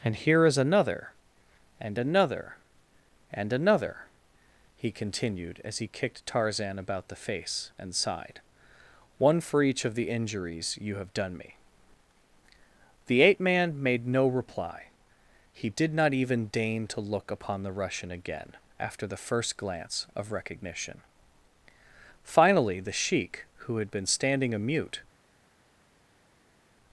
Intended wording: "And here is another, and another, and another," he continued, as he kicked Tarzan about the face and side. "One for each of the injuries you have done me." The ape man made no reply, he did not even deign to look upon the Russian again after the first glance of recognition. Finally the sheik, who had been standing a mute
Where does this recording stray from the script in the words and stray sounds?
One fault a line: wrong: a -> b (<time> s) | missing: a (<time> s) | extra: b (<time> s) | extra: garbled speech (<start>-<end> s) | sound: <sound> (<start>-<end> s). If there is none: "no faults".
no faults